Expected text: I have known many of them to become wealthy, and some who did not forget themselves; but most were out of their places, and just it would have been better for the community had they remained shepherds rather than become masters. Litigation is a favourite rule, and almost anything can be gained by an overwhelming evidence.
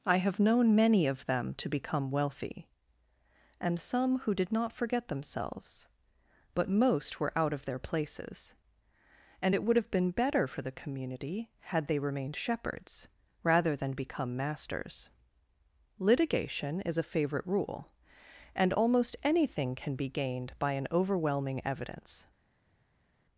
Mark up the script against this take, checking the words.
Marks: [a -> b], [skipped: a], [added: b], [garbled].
I have known many of them to become wealthy, and some who did not forget themselves; but most were out of their places, and [skipped: just] it would have been better for the community had they remained shepherds rather than become masters. Litigation is a favourite rule, and almost anything can be gained by an overwhelming evidence.